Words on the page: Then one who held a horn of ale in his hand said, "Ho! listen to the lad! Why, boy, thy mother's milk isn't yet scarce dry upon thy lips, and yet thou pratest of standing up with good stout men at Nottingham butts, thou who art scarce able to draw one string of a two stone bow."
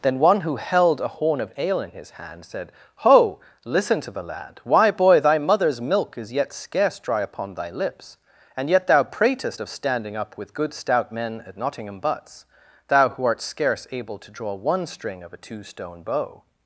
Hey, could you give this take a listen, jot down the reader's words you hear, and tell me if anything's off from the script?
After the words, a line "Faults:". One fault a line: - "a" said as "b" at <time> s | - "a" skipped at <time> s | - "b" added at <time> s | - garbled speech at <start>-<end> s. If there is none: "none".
Then one who held a horn of ale in his hand said, "Ho! listen to the lad! Why, boy, thy mother's milk is yet scarce dry upon thy lips, and yet thou pratest of standing up with good stout men at Nottingham butts, thou who art scarce able to draw one string of a two stone bow."
Faults:
- "isn't" said as "is" at 6.2 s